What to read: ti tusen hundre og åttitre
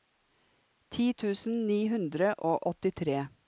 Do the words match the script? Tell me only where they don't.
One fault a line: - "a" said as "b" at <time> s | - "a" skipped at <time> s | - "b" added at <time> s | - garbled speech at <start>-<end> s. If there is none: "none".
- "ni" added at 1.7 s